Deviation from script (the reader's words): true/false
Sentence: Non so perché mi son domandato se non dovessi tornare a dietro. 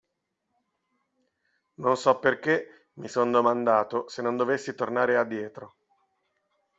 false